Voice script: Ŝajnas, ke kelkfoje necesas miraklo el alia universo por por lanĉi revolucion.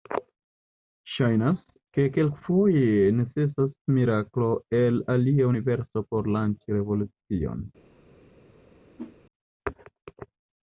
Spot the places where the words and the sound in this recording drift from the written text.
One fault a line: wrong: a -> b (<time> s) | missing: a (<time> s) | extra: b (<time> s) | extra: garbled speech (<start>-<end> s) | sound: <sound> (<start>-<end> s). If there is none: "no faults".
missing: por (6.3 s)
sound: whoosh (9.0-9.2 s)